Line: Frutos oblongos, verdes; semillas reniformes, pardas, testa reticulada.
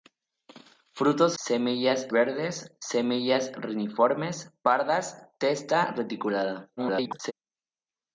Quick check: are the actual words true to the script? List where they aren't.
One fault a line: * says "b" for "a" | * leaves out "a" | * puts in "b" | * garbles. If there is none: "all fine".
* says "semillas" for "oblongos"
* garbles